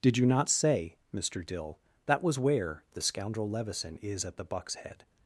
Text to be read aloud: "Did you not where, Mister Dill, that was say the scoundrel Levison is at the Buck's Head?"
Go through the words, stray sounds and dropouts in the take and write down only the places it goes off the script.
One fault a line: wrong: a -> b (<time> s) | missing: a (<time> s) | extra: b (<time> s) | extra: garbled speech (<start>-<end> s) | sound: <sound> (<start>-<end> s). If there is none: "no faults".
wrong: where -> say (0.5 s)
wrong: say -> where (2.4 s)